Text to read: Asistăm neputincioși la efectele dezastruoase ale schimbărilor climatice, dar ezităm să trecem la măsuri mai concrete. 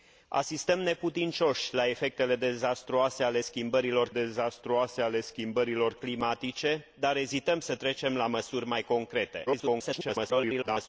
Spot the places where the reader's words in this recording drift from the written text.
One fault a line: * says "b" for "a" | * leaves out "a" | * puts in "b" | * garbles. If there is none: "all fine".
* puts in "dezastruoase ale schimbărilor"
* garbles